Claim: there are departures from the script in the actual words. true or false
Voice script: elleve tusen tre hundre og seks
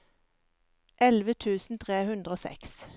false